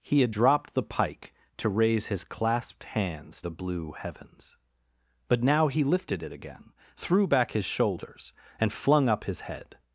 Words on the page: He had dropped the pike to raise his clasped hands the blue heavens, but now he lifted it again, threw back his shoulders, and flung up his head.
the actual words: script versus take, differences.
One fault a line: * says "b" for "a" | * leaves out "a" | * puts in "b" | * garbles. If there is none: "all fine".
all fine